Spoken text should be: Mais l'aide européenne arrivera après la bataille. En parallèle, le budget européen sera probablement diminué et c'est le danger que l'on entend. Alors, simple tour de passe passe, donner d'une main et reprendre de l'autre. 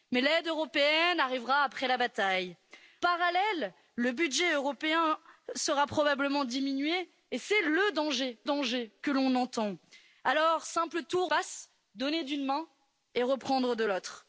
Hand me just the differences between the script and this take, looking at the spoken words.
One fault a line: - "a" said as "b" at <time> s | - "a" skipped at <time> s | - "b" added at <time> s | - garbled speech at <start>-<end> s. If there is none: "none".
- "En" skipped at 2.5 s
- "danger" added at 8.4 s
- "de passe" skipped at 11.3 s